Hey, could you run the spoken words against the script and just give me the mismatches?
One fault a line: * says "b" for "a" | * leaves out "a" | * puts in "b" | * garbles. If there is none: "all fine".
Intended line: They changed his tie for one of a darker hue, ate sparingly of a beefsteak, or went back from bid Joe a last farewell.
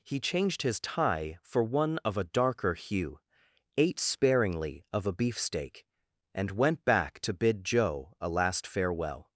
* says "He" for "They"
* says "and" for "or"
* says "to" for "from"